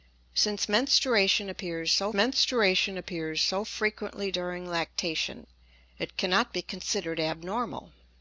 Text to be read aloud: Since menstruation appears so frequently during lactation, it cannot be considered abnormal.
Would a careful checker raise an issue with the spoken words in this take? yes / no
yes